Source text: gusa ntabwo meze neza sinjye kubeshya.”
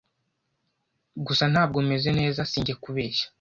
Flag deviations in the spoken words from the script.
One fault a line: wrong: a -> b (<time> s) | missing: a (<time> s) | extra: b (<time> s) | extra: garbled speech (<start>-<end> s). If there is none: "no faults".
no faults